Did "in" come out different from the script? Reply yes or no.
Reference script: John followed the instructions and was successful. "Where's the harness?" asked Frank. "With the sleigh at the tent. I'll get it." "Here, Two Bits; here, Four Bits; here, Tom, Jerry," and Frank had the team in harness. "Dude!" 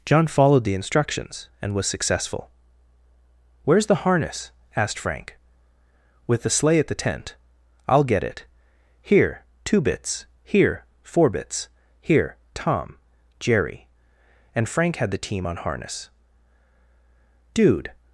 yes